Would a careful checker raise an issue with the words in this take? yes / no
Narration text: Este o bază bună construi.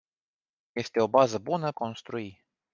no